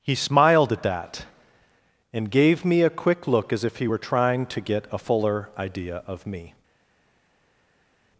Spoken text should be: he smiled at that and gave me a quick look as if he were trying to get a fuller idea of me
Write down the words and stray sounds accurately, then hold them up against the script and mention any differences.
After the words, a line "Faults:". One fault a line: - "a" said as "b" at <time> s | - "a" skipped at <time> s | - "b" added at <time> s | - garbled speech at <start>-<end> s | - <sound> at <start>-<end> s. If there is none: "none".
he smiled at that and gave me a quick look as if he were trying to get a fuller idea of me
Faults:
none